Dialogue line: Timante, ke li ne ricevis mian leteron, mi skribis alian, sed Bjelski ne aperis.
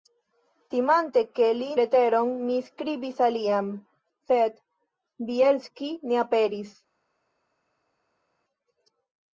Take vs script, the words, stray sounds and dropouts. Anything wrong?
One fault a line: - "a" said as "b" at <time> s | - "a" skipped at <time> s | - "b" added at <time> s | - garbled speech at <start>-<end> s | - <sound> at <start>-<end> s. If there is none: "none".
- "ne ricevis mian" skipped at 1.7 s